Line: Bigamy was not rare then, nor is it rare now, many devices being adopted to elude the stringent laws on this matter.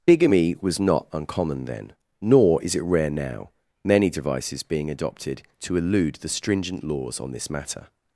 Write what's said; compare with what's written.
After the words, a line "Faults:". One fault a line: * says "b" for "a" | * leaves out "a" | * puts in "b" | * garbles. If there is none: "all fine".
Bigamy was not uncommon then, nor is it rare now, many devices being adopted to elude the stringent laws on this matter.
Faults:
* says "uncommon" for "rare"